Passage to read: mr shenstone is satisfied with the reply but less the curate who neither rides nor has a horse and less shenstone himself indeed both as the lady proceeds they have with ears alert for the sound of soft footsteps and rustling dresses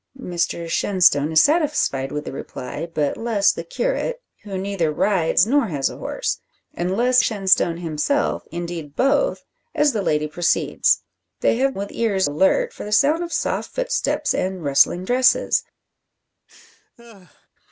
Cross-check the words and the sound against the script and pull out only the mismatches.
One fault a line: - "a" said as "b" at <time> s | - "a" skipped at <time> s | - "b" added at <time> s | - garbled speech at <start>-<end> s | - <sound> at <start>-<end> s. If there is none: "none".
- laugh at 16.5-17.5 s